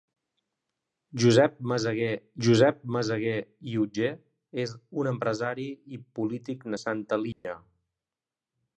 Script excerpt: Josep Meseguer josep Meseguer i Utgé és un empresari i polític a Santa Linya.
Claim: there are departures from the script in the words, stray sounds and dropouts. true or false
true